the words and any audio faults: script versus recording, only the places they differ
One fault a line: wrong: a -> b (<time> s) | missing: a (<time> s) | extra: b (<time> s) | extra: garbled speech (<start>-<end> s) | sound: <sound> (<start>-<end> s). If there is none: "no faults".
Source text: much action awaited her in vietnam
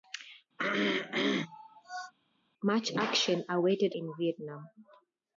sound: throat clearing (0.6-2.1 s)
missing: her (3.9 s)